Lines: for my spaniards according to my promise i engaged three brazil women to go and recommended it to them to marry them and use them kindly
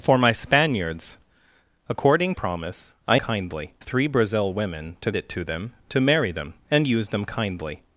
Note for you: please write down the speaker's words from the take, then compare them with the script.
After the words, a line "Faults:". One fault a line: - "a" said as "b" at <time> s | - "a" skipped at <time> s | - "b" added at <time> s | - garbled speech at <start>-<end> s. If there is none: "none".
for my spaniards according promise i kindly three brazil women to it to them to marry them and use them kindly
Faults:
- "to my" skipped at 2.3 s
- "engaged" said as "kindly" at 3.2 s
- "go and recommended" skipped at 5.1 s